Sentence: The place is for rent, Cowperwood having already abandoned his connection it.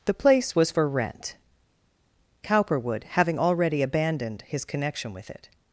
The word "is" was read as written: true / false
false